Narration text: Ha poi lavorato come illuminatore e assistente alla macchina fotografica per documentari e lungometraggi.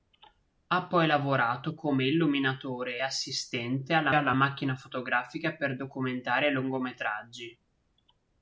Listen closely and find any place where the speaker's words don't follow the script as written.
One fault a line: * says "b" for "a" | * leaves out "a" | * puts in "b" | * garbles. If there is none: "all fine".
* puts in "alla"